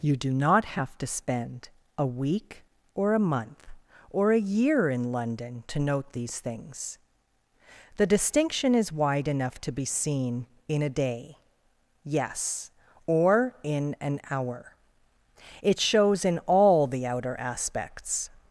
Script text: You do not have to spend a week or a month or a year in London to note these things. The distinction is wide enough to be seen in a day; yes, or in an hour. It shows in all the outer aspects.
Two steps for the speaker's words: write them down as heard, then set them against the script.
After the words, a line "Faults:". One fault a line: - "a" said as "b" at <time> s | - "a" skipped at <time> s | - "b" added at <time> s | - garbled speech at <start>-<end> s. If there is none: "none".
You do not have to spend a week or a month or a year in London to note these things. The distinction is wide enough to be seen in a day; yes, or in an hour. It shows in all the outer aspects.
Faults:
none